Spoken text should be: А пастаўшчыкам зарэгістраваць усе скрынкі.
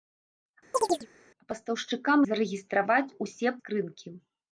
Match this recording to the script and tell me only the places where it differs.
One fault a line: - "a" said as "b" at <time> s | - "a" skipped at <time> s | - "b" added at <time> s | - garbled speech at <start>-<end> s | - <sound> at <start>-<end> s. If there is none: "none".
- chirp at 0.7-1.1 s